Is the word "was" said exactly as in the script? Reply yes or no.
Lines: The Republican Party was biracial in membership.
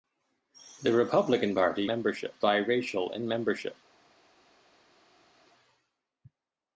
no